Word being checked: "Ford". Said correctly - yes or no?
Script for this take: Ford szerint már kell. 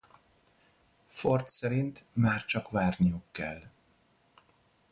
yes